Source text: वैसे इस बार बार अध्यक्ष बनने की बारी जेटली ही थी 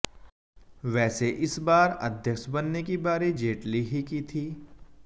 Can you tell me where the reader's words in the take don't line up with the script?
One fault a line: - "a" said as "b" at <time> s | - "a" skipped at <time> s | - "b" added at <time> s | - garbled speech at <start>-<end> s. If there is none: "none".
- "बार" skipped at 1.9 s
- "की" added at 4.0 s